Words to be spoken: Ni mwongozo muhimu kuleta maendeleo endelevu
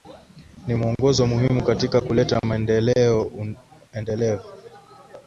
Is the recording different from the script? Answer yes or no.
yes